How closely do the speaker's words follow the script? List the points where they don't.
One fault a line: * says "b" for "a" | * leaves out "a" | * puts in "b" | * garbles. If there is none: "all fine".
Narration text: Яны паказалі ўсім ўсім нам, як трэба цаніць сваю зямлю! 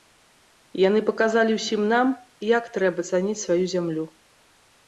* leaves out "ўсім"